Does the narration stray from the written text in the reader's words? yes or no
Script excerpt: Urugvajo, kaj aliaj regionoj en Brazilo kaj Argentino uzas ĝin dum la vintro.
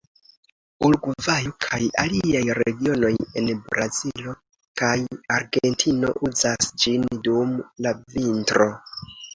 no